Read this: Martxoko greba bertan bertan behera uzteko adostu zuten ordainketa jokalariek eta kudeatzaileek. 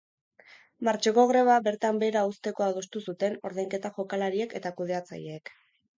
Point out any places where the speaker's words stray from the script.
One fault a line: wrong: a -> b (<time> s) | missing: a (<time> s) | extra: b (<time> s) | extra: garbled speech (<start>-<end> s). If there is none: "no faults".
missing: bertan (2.0 s)